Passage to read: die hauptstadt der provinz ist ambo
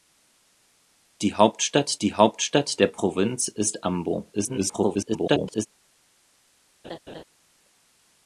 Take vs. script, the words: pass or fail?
fail